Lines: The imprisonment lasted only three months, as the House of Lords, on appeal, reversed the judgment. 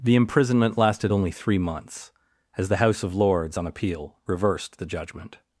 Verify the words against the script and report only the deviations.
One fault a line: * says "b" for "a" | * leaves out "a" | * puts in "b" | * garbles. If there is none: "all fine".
all fine